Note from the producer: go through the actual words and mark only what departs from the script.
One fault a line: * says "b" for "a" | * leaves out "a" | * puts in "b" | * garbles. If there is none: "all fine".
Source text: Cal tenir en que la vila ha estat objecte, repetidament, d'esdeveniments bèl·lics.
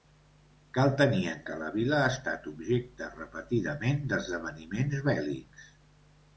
all fine